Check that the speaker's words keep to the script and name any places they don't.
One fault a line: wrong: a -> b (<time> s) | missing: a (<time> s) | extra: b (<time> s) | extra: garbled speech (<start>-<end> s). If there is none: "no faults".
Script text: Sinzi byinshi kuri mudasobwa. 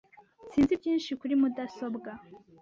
no faults